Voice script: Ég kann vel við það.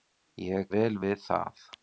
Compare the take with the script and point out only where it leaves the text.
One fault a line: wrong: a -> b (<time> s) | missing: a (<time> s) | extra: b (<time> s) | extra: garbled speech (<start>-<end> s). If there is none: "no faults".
missing: kann (0.7 s)